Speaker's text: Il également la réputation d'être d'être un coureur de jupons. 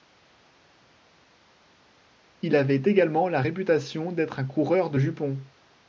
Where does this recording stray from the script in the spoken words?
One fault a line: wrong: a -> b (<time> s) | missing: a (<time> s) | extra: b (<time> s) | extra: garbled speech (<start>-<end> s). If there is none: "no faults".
extra: avait (2.5 s)
missing: d'être (4.4 s)